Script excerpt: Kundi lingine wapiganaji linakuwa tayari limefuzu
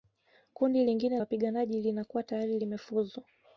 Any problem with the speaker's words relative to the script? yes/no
no